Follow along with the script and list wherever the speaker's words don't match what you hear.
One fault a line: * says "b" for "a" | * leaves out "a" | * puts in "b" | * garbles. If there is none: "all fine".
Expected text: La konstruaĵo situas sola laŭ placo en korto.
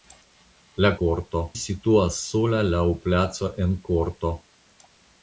* says "korto" for "konstruaĵo"